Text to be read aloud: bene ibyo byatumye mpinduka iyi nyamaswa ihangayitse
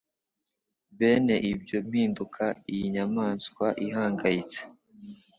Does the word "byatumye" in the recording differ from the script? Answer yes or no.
yes